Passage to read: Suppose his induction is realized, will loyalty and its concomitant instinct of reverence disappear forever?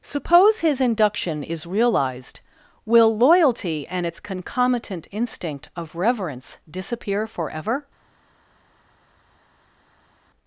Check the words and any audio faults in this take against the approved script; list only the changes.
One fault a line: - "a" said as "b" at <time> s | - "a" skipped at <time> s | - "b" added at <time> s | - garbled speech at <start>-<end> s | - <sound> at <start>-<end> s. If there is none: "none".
none